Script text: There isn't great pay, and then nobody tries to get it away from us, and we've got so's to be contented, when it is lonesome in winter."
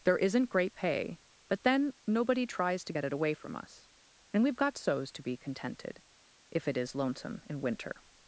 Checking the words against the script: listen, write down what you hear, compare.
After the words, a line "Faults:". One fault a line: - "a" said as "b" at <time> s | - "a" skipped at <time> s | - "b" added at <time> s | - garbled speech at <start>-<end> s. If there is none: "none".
There isn't great pay, but then nobody tries to get it away from us, and we've got so's to be contented, if it is lonesome in winter."
Faults:
- "and" said as "but" at 1.5 s
- "when" said as "if" at 6.5 s